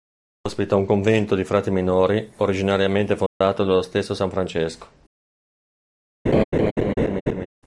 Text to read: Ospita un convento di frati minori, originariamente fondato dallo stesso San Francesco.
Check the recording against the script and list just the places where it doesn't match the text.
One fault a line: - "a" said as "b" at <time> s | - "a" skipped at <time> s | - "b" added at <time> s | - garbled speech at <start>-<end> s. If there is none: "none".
none